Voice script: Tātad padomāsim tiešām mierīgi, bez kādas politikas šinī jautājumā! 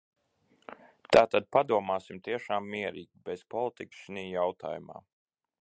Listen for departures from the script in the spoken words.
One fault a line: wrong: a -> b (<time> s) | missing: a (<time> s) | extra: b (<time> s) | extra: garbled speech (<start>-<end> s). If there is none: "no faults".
missing: kādas (3.4 s)